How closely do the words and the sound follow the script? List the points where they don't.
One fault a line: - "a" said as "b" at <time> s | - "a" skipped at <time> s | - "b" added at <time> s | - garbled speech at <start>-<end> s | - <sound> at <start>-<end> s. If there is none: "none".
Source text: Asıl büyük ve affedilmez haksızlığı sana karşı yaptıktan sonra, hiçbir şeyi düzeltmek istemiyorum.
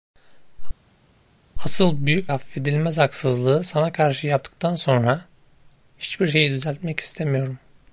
- "ve" skipped at 2.3 s